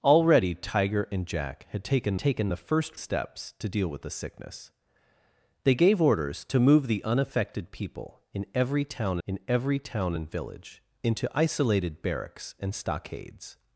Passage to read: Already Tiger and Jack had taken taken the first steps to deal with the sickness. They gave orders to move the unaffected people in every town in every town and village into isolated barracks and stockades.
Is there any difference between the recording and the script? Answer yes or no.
no